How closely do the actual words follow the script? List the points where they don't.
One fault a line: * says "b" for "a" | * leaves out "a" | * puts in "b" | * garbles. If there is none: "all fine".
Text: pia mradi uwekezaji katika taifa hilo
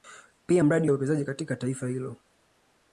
all fine